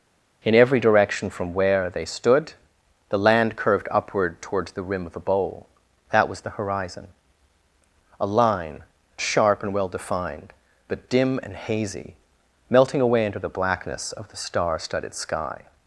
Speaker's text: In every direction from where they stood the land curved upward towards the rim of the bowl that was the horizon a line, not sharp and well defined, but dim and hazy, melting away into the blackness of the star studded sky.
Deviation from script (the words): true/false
true